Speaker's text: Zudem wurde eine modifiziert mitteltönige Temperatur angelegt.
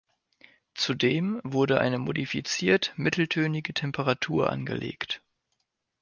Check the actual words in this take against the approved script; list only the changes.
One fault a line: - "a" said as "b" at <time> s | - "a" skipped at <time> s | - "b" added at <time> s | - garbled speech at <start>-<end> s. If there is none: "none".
none